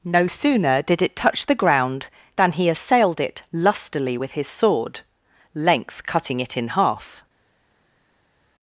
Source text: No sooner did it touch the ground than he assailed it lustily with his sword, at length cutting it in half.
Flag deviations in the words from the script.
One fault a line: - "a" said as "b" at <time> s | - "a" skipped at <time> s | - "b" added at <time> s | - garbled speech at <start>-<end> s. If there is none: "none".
- "at" skipped at 5.0 s